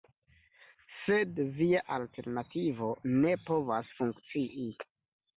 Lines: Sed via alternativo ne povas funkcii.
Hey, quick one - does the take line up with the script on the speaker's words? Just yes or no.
yes